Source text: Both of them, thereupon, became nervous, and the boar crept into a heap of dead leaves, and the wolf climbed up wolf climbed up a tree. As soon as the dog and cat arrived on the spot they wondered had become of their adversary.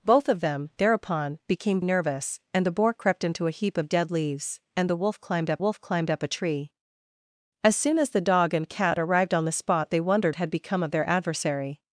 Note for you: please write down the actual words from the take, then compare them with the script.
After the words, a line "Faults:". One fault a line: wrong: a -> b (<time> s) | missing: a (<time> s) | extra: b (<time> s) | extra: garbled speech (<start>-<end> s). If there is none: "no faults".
Both of them, thereupon, became nervous, and the boar crept into a heap of dead leaves, and the wolf climbed up wolf climbed up a tree. As soon as the dog and cat arrived on the spot they wondered had become of their adversary.
Faults:
no faults